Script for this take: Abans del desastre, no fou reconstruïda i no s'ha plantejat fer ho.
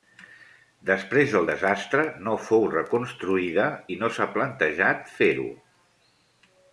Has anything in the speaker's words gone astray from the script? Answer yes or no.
yes